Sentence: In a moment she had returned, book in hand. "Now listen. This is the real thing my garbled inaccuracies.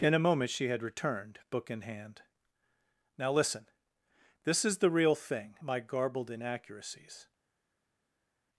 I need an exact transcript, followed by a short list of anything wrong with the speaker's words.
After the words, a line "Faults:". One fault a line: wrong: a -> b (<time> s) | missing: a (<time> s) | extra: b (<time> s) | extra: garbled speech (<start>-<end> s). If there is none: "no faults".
In a moment she had returned, book in hand. "Now listen. This is the real thing my garbled inaccuracies.
Faults:
no faults